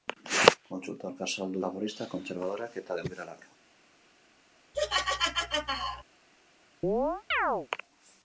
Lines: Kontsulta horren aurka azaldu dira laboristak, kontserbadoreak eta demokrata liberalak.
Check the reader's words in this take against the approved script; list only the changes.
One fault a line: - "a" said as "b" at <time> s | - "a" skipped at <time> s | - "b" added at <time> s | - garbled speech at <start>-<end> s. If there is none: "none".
- "horren" skipped at 1.1 s
- "dira" skipped at 1.6 s
- "demokrata" skipped at 3.0 s